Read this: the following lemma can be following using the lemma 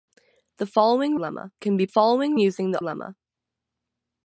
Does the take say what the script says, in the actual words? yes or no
yes